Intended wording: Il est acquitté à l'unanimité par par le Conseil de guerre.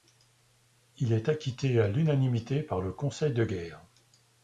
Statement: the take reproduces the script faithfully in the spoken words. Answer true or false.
false